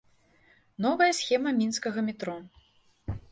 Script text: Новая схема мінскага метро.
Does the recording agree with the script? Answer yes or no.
yes